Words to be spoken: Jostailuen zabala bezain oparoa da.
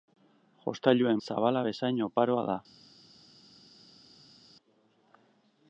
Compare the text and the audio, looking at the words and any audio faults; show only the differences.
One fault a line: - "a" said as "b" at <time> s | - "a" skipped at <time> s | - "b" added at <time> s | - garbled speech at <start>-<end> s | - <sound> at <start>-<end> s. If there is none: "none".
none